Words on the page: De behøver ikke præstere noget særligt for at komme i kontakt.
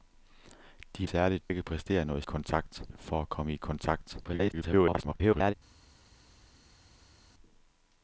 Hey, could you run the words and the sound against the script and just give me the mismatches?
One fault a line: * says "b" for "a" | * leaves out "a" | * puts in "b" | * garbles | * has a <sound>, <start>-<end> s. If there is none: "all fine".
* says "særligt" for "behøver"
* says "kontakt" for "særligt"
* garbles